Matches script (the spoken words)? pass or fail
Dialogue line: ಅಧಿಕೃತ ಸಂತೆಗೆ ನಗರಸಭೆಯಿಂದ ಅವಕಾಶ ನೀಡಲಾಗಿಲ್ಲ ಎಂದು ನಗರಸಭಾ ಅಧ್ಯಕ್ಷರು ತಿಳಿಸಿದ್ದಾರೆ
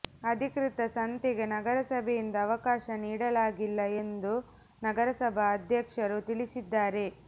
pass